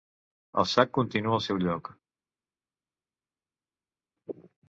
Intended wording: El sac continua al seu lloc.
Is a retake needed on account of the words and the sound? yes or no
no